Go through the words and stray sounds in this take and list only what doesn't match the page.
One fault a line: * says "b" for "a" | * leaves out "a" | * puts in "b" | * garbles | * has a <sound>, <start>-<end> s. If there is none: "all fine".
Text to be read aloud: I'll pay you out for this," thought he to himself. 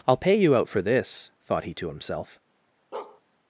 * has a bark, 2.9-3.2 s